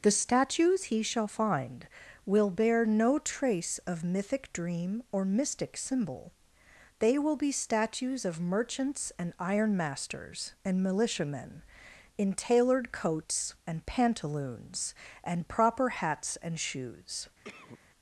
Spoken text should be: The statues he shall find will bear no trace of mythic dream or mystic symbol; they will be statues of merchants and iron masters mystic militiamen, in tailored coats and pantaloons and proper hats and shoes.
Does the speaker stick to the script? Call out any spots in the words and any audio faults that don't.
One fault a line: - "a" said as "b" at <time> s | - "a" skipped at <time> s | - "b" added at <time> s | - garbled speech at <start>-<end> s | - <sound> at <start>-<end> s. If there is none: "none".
- "mystic" said as "and" at 10.6 s
- cough at 17.4-17.8 s